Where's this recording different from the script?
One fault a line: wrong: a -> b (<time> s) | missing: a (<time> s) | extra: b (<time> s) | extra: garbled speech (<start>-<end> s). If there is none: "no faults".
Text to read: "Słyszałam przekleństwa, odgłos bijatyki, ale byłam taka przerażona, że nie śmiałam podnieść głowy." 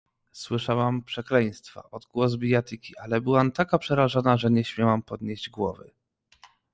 no faults